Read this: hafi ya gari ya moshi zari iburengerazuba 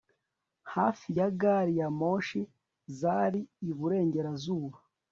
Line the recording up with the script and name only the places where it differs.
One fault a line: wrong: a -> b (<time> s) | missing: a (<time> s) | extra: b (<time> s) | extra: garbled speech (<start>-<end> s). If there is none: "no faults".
no faults